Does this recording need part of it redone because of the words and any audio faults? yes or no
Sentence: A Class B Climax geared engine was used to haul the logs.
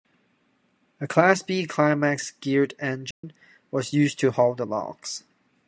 yes